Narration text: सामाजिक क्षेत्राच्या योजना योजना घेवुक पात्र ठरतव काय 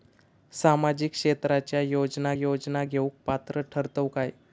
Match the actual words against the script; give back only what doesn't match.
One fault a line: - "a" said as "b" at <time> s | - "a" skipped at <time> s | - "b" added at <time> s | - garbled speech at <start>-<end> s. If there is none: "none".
none